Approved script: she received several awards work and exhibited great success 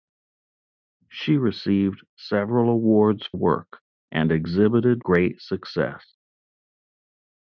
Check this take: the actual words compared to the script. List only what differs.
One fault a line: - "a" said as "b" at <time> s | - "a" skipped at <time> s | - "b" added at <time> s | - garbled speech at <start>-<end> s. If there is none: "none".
none